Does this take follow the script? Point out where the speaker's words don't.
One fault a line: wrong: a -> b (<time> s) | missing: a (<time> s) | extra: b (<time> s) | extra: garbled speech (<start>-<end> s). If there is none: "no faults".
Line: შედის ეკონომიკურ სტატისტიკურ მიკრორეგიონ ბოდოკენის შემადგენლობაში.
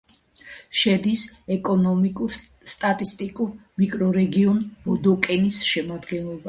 no faults